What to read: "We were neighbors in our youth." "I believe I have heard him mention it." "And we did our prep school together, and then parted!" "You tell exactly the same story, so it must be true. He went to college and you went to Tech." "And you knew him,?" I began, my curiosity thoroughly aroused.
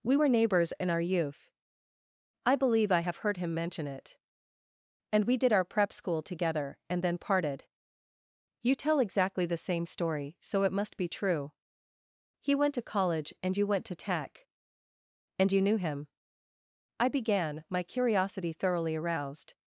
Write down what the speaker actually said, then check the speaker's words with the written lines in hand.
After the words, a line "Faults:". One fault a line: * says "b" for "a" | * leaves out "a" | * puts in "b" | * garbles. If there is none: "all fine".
"We were neighbors in our youth." "I believe I have heard him mention it." "And we did our prep school together, and then parted!" "You tell exactly the same story, so it must be true. He went to college and you went to Tech." "And you knew him,?" I began, my curiosity thoroughly aroused.
Faults:
all fine